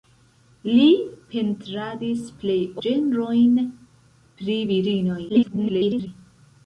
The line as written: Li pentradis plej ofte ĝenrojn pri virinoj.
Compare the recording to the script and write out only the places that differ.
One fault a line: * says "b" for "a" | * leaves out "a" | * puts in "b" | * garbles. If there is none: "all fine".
* leaves out "ofte"
* garbles